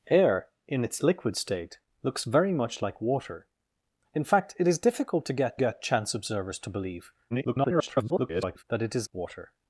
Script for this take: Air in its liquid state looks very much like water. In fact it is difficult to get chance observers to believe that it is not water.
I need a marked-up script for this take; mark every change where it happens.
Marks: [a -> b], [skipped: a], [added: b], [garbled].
Air in its liquid state looks very much like water. In fact it is difficult to get [added: get] chance observers to believe [garbled] that it is [skipped: not] water.